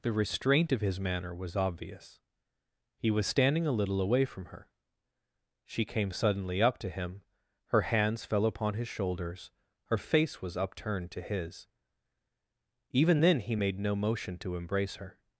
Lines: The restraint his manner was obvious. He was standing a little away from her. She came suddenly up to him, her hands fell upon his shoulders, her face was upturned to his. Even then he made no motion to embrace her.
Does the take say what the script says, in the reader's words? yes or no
no